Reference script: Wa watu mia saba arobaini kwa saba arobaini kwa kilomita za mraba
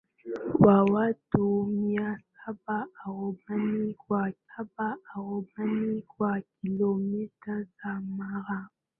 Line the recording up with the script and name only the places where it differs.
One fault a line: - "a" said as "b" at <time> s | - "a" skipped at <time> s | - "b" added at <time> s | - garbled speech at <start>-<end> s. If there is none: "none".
none